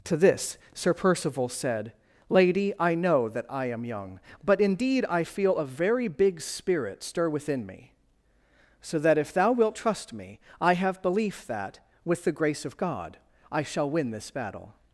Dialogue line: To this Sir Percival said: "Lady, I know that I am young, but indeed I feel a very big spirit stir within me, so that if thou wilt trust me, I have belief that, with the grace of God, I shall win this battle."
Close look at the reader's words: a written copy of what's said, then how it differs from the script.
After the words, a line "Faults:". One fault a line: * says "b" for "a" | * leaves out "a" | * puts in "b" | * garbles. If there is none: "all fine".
To this Sir Percival said: "Lady, I know that I am young, but indeed I feel a very big spirit stir within me, so that if thou wilt trust me, I have belief that, with the grace of God, I shall win this battle."
Faults:
all fine